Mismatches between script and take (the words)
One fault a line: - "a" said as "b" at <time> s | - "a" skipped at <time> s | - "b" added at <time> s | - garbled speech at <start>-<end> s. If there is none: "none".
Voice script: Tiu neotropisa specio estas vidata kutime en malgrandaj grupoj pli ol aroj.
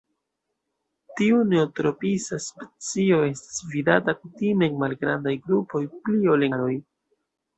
none